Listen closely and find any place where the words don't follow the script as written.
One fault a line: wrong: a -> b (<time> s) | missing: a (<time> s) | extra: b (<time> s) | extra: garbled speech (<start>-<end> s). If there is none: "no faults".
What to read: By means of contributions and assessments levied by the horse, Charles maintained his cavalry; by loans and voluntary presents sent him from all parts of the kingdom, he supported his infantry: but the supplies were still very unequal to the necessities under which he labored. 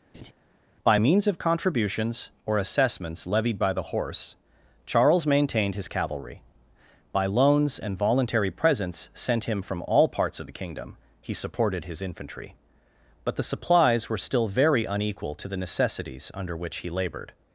wrong: and -> or (2.5 s)